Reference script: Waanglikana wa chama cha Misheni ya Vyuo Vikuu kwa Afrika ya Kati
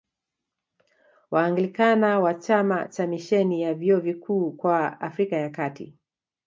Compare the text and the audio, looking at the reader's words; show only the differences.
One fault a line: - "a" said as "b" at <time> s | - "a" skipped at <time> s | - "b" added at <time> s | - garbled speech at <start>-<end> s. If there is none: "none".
none